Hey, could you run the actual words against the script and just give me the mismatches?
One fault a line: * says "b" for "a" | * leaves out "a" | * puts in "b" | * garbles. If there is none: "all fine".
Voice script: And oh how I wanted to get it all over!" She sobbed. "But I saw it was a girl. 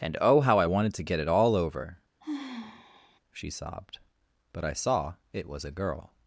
all fine